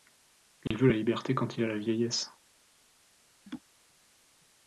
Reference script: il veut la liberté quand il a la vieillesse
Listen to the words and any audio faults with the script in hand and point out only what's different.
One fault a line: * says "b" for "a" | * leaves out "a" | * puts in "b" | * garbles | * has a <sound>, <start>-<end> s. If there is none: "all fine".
* has a dropout, 0.7-0.7 s
* has a laugh, 3.5-3.6 s